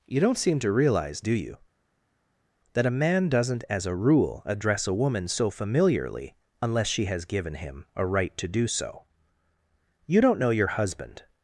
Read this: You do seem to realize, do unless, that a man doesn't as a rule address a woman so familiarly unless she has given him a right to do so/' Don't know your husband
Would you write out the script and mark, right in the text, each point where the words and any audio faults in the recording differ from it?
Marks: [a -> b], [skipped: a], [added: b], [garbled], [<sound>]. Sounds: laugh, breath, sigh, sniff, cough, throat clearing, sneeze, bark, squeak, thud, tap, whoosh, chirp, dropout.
You [do -> don't] seem to realize, do [unless, -> you] that a man doesn't as a rule address a woman so familiarly unless she has given him a right to do so/' [added: You] Don't know your husband